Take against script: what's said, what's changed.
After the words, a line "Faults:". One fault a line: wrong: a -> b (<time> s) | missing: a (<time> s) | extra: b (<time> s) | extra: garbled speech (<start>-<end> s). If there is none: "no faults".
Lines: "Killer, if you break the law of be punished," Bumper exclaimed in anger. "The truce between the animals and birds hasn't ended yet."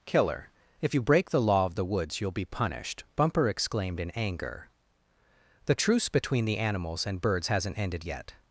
"Killer, if you break the law of the woods you'll be punished," Bumper exclaimed in anger. "The truce between the animals and birds hasn't ended yet."
Faults:
extra: the woods you'll (1.7 s)